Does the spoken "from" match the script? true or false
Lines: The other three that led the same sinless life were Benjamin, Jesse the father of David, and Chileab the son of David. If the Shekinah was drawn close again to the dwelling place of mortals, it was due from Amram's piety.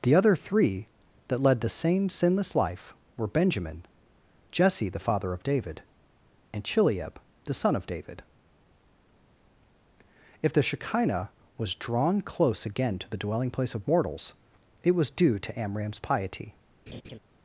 false